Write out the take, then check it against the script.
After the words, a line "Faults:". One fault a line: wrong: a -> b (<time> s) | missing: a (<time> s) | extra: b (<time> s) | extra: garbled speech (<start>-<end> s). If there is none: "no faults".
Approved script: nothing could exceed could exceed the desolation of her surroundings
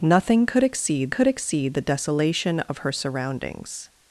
nothing could exceed could exceed the desolation of her surroundings
Faults:
no faults